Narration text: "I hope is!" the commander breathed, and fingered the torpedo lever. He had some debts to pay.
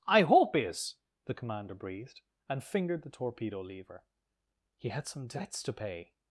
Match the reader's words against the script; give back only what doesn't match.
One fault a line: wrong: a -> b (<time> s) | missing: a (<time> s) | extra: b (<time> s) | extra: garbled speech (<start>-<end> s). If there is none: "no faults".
no faults